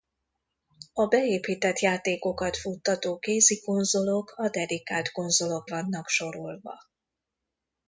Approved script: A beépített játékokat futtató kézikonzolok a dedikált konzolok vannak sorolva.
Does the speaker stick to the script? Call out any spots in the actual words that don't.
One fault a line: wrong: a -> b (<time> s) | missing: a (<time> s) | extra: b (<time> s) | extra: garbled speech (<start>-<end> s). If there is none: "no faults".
no faults